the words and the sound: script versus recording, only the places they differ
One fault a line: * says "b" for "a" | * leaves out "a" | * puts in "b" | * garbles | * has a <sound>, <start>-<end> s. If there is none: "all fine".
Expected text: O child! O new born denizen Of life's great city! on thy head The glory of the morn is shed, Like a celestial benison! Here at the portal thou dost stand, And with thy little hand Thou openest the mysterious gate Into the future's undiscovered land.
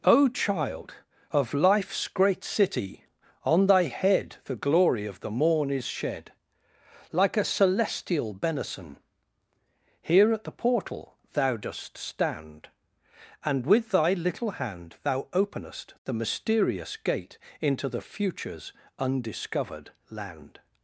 * leaves out "O new born denizen"